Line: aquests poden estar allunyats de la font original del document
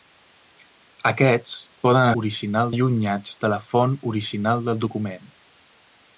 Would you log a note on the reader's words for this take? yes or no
yes